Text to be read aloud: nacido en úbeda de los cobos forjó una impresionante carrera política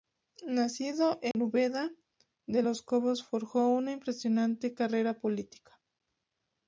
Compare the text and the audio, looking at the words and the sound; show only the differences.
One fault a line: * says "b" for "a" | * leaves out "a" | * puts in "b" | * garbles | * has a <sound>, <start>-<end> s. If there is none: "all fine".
* has a dropout, 1.3-1.3 s